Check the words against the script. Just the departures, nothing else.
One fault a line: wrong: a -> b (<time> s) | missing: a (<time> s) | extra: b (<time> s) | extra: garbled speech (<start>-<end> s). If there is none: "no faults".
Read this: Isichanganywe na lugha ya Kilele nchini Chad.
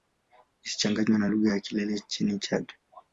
no faults